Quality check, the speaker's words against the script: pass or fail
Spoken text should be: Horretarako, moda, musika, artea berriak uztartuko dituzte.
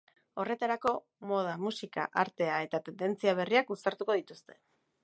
fail